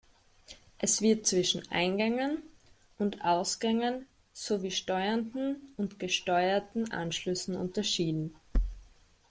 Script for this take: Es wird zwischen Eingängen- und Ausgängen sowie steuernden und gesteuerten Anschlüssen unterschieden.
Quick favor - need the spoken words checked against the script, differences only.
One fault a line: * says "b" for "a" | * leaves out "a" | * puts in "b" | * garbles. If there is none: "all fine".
all fine